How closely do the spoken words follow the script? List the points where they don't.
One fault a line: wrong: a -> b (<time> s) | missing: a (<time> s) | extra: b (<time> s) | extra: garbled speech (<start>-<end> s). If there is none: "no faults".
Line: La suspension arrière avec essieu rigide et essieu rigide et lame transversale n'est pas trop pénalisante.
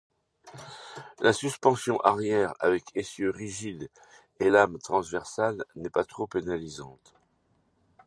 missing: essieu rigide et (4.5 s)